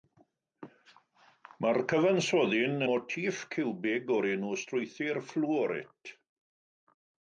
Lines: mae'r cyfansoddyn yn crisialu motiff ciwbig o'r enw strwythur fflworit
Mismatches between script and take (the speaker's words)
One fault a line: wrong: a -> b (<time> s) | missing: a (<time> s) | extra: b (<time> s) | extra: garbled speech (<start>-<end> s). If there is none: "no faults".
missing: yn crisialu (2.9 s)